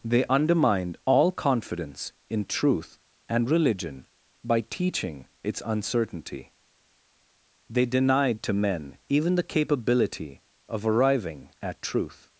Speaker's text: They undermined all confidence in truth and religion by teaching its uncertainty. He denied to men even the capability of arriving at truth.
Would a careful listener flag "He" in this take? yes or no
yes